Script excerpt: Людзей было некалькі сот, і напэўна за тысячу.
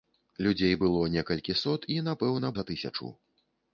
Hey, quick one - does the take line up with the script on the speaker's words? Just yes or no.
yes